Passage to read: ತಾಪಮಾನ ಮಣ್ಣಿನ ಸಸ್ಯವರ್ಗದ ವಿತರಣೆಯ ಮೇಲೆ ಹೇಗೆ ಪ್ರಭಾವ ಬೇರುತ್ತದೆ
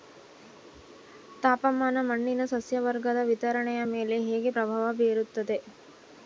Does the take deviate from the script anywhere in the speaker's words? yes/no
no